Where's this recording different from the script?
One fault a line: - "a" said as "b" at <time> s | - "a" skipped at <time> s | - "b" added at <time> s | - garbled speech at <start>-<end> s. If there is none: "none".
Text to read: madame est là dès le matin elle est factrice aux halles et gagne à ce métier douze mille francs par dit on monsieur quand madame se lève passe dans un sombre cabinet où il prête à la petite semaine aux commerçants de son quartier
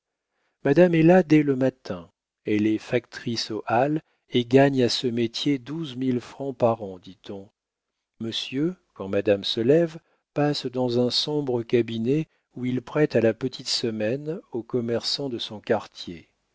- "an" added at 6.8 s